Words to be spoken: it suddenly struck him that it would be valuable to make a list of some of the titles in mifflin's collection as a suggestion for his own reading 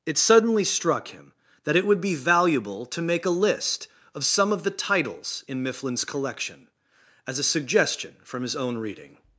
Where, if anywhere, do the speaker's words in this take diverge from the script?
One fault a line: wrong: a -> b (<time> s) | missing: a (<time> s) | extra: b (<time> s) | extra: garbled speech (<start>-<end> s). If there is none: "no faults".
wrong: for -> from (8.2 s)